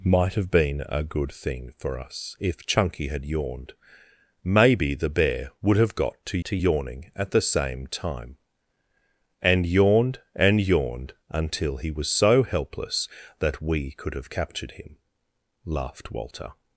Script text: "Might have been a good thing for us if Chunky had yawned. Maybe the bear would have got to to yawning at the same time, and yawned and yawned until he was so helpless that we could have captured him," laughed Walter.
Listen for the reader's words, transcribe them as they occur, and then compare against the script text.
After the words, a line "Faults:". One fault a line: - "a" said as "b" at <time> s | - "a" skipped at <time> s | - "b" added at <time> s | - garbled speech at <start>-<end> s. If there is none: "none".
"Might have been a good thing for us if Chunky had yawned. Maybe the bear would have got to to yawning at the same time, and yawned and yawned until he was so helpless that we could have captured him," laughed Walter.
Faults:
none